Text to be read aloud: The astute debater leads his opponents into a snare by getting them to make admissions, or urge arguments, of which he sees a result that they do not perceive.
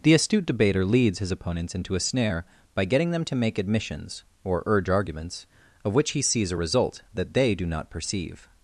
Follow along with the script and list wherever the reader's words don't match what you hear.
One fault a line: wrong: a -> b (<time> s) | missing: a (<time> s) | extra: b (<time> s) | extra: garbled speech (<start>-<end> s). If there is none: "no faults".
no faults